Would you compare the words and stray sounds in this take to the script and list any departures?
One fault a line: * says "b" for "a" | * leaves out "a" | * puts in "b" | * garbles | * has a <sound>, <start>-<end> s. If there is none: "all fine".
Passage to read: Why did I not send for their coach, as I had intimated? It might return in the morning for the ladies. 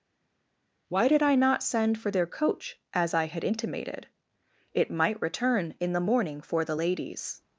all fine